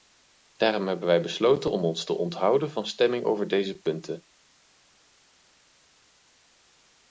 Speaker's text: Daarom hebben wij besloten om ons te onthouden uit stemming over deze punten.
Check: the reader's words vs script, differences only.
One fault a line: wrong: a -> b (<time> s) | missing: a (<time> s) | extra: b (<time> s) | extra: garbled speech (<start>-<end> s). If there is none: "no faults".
wrong: uit -> van (2.7 s)